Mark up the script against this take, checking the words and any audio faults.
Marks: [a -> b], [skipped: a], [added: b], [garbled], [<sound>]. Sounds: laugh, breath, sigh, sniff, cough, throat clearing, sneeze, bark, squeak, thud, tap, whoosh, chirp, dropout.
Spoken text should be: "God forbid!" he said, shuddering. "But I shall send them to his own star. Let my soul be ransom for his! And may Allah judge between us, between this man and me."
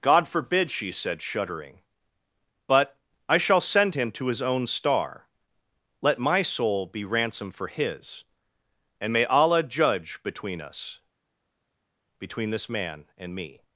"God forbid!" [he -> she] said, shuddering. "But I shall send [them -> him] to his own star. Let my soul be ransom for his! And may Allah judge between us, between this man and me."